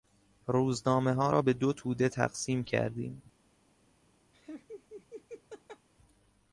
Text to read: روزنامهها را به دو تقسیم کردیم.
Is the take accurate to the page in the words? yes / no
no